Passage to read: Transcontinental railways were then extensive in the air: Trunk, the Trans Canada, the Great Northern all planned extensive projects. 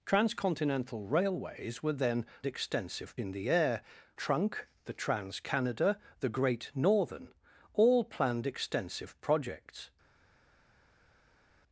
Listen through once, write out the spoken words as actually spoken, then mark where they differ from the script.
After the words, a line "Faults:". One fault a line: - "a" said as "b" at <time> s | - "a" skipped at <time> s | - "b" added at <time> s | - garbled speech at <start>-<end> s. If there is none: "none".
Transcontinental railways were then extensive in the air: Trunk, the Trans Canada, the Great Northern all planned extensive projects.
Faults:
none